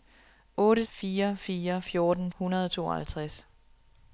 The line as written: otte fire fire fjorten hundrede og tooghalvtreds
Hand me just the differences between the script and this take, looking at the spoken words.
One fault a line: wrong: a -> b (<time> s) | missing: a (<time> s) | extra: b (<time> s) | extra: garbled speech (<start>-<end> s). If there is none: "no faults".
no faults